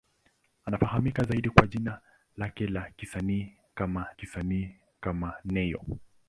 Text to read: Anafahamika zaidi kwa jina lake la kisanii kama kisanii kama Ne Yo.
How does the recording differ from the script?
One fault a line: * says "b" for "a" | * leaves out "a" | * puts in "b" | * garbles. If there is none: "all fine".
all fine